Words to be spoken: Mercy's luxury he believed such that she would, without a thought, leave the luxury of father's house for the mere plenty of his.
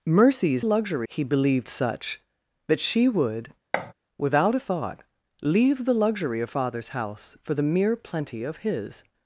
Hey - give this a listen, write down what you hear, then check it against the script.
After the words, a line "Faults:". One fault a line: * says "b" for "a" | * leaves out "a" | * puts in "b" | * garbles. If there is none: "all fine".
Mercy's luxury he believed such that she would, without a thought, leave the luxury of father's house for the mere plenty of his.
Faults:
all fine